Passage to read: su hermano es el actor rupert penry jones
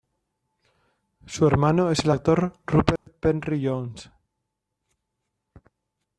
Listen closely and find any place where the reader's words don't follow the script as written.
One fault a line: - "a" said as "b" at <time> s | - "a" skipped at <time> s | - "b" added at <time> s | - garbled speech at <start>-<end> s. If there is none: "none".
none